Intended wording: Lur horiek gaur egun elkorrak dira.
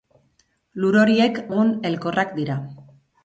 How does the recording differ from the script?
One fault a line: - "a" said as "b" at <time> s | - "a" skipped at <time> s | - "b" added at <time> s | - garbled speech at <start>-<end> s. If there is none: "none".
- "gaur" skipped at 1.4 s